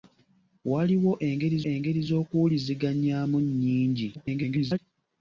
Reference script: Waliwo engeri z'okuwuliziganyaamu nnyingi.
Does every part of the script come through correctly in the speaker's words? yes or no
no